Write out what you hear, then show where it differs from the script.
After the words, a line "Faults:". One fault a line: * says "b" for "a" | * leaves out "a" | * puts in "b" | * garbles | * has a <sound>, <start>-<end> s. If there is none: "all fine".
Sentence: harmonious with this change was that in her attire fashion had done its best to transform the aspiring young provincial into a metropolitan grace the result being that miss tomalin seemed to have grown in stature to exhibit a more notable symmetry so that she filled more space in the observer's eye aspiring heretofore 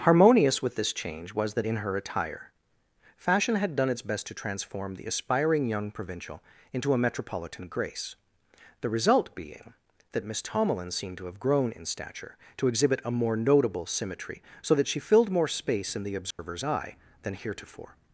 harmonious with this change was that in her attire fashion had done its best to transform the aspiring young provincial into a metropolitan grace the result being that miss tomalin seemed to have grown in stature to exhibit a more notable symmetry so that she filled more space in the observer's eye than heretofore
Faults:
* has a dropout, 16.3-16.4 s
* says "than" for "aspiring"